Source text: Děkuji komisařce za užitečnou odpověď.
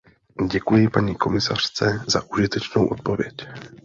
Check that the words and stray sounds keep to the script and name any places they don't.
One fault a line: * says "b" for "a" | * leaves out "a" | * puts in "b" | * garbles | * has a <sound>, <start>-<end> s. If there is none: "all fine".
* puts in "paní"